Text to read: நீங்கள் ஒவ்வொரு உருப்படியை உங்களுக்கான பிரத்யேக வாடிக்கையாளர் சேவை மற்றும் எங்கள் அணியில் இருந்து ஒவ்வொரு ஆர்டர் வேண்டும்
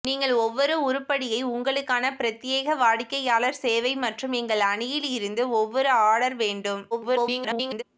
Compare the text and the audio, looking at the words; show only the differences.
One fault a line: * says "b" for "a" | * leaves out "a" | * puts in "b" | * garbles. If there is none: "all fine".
* garbles